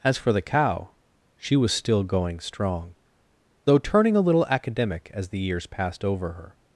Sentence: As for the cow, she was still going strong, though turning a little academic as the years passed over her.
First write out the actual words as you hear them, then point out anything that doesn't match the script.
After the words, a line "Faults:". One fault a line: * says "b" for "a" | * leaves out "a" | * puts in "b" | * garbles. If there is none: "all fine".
As for the cow, she was still going strong, though turning a little academic as the years passed over her.
Faults:
all fine